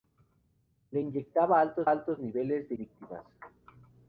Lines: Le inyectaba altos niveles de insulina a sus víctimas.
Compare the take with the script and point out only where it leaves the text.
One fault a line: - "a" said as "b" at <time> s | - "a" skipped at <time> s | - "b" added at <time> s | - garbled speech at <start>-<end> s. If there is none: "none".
- "altos" added at 1.9 s
- "insulina a sus" skipped at 2.8 s